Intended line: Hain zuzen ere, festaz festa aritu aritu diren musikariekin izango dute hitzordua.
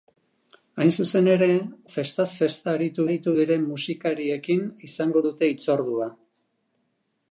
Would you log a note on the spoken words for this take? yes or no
no